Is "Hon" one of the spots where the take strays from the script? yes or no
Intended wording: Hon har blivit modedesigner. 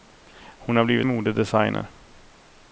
no